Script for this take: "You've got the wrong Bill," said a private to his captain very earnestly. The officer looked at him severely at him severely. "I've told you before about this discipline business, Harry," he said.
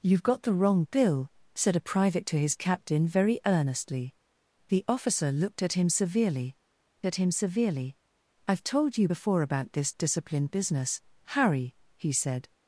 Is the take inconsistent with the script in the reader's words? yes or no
no